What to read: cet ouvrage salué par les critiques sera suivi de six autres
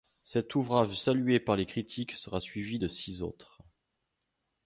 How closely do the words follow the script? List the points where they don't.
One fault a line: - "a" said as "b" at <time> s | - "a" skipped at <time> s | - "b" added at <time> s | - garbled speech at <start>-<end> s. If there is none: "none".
none